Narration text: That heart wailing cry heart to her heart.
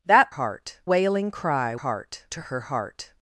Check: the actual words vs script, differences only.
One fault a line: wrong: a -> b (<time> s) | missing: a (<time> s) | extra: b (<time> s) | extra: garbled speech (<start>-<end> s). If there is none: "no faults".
no faults